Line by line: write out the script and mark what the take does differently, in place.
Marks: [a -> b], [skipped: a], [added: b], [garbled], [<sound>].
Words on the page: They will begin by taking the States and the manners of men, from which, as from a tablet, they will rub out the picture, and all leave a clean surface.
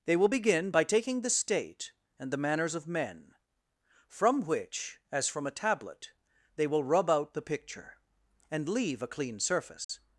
They will begin by taking the [States -> State] and the manners of men, from which, as from a tablet, they will rub out the picture, and [skipped: all] leave a clean surface. [dropout]